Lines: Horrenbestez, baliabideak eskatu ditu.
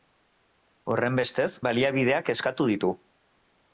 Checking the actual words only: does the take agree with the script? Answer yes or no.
yes